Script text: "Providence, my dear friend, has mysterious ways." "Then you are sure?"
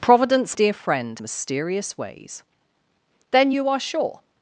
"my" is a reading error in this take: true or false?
true